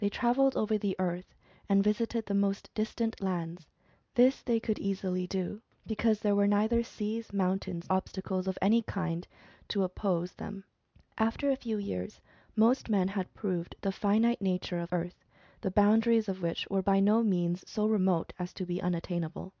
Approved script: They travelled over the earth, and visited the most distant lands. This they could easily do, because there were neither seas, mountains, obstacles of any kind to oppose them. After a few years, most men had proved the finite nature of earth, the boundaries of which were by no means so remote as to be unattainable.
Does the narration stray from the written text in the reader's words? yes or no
no